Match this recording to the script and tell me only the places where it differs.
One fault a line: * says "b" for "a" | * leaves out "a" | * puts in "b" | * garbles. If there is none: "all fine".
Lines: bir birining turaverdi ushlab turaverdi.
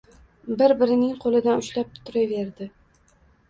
* says "qo‘lidan" for "turaverdi"